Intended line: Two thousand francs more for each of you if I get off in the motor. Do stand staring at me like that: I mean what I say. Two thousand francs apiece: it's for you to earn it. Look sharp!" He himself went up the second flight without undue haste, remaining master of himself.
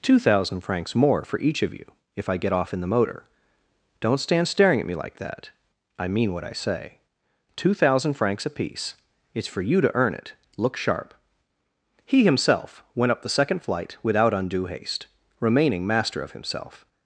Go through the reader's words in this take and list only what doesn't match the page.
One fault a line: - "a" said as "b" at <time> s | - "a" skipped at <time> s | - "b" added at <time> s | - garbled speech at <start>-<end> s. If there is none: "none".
- "Do" said as "Don't" at 4.0 s